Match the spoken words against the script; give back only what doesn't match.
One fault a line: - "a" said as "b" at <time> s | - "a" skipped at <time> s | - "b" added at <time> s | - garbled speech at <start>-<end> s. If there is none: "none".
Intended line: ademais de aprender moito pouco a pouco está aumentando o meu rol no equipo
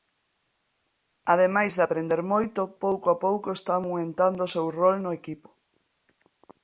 - "meu" said as "seu" at 4.5 s